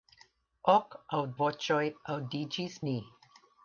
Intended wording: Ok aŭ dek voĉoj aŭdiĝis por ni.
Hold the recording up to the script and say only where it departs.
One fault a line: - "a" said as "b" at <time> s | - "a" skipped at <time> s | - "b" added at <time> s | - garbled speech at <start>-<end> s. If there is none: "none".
- "dek" skipped at 1.2 s
- "por" skipped at 2.8 s